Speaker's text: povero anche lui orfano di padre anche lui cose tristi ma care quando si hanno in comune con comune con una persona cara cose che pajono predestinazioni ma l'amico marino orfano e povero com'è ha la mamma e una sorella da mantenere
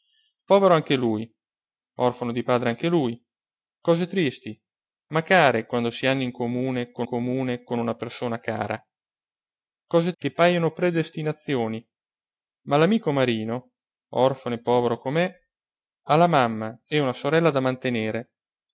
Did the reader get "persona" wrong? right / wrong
right